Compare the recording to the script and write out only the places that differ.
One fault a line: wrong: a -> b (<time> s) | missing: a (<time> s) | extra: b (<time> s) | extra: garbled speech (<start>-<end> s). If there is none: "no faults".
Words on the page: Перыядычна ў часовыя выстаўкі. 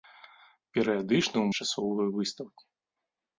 no faults